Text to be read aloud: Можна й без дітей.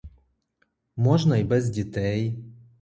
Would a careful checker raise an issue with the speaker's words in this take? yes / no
no